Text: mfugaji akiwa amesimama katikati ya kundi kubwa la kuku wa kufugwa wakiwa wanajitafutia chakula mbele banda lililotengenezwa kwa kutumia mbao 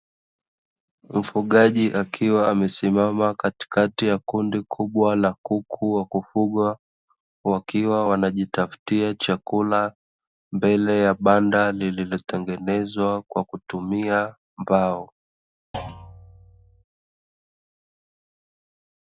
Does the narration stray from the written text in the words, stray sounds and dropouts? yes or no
yes